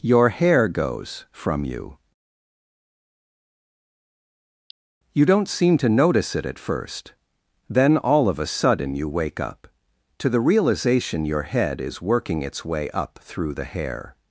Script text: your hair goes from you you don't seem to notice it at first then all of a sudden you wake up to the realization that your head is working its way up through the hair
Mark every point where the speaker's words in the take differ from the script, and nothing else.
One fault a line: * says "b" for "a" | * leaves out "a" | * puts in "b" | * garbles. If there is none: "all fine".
* leaves out "that"